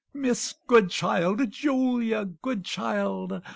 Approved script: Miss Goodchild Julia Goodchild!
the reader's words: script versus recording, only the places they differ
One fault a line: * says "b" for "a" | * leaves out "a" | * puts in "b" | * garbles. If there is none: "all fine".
all fine